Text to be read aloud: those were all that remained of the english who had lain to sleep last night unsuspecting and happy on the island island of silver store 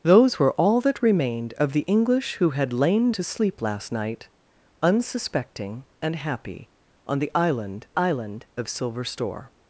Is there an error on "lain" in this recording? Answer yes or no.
no